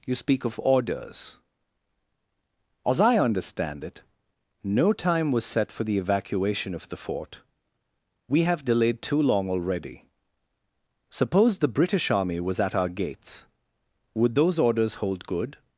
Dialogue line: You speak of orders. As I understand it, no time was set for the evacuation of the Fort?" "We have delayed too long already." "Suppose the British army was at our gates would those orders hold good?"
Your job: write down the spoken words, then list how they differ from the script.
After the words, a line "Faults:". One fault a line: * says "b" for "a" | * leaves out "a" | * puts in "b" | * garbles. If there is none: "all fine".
You speak of orders. As I understand it, no time was set for the evacuation of the Fort?" "We have delayed too long already." "Suppose the British army was at our gates would those orders hold good?"
Faults:
all fine